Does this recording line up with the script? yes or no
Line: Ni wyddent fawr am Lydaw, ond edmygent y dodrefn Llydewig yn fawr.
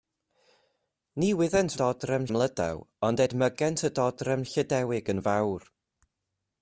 no